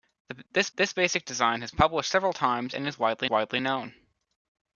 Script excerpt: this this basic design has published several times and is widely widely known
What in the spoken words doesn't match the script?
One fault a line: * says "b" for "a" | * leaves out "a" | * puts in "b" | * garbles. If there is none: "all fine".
all fine